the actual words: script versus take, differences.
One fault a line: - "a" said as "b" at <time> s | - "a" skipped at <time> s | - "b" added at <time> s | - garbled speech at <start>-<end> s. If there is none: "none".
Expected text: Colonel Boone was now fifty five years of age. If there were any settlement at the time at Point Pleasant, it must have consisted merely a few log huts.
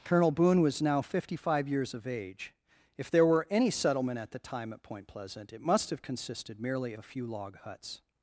none